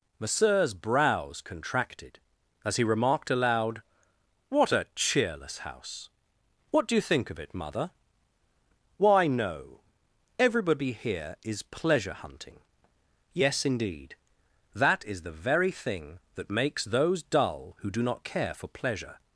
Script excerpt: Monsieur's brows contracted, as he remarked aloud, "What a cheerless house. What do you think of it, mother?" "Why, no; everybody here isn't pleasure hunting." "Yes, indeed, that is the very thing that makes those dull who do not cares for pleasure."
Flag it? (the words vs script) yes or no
yes